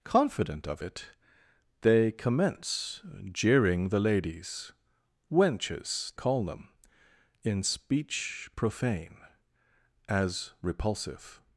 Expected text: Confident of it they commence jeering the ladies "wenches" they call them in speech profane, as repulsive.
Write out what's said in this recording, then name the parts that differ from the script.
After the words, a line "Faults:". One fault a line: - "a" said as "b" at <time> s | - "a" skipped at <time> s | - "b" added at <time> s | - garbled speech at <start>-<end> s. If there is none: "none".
Confident of it they commence jeering the ladies "wenches" call them in speech profane, as repulsive.
Faults:
- "they" skipped at 6.1 s